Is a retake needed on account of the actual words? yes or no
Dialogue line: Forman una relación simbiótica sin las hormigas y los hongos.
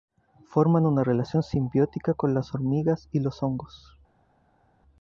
yes